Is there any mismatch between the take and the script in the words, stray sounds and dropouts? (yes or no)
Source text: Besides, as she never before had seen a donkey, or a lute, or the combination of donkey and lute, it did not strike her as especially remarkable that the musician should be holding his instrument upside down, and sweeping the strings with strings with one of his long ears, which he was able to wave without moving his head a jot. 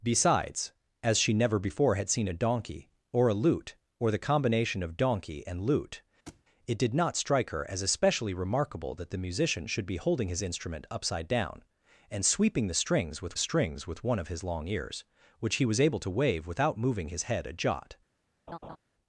yes